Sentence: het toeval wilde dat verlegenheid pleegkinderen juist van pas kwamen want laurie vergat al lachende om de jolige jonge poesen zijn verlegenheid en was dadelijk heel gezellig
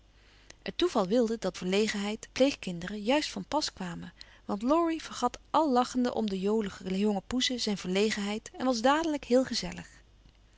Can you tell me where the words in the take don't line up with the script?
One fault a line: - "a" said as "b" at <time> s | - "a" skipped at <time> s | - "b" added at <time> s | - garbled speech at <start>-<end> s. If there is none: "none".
none